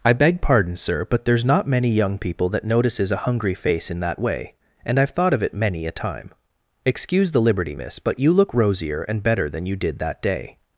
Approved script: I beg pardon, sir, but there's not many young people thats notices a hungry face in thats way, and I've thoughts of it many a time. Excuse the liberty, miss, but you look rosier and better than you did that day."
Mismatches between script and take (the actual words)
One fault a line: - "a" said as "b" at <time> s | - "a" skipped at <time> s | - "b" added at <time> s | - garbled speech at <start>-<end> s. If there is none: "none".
- "thats" said as "that" at 2.5 s
- "thats" said as "that" at 4.0 s
- "thoughts" said as "thought" at 5.1 s